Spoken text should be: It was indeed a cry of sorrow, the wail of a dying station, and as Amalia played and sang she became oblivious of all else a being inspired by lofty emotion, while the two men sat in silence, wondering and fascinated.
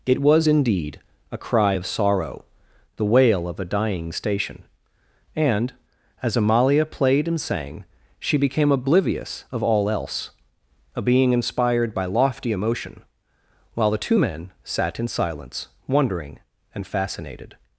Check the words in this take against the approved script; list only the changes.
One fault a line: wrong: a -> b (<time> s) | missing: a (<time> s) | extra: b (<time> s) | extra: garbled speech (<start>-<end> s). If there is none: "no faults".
no faults